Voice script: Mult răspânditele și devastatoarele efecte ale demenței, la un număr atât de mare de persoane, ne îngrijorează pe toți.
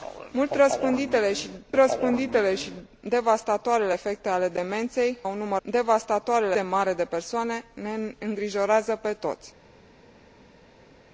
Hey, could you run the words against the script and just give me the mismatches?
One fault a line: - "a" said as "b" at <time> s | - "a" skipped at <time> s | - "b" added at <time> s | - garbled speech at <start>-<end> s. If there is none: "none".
- "răspânditele și" added at 1.7 s
- "la" skipped at 5.2 s
- "atât" said as "devastatoarele" at 5.6 s